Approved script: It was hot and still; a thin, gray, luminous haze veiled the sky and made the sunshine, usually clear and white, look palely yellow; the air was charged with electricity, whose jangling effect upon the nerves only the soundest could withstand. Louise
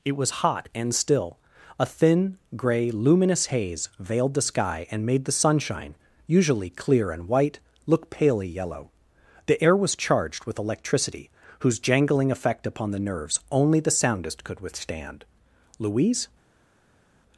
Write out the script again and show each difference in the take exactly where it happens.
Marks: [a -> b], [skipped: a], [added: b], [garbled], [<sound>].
It was hot and still; a thin, gray, luminous haze veiled the sky and made the sunshine, usually clear and white, look palely yellow; the air was charged with electricity, whose jangling effect upon the nerves only the soundest could withstand. Louise